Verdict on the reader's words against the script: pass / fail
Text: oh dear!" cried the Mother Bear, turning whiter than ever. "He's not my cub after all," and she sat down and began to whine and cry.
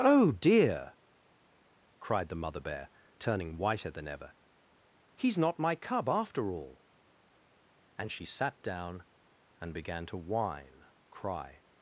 fail